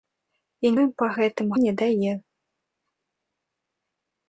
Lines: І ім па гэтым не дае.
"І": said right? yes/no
yes